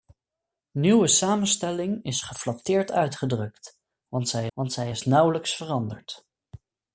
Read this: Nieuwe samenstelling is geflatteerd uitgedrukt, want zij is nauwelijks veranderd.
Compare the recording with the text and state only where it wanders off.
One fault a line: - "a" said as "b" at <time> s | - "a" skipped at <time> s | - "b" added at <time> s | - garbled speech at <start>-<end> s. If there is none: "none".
- "want zij" added at 4.5 s